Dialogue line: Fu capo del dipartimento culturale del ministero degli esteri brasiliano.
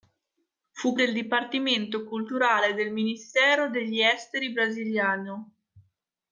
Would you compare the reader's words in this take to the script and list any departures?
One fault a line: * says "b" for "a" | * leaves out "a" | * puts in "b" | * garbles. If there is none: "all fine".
* leaves out "capo"